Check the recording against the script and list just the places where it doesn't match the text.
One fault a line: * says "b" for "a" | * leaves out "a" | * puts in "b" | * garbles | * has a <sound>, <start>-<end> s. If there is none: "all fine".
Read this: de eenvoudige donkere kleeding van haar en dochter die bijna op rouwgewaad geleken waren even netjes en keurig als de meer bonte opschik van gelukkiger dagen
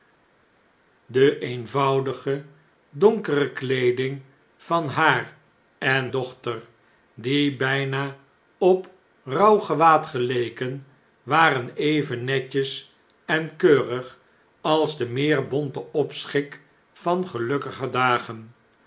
all fine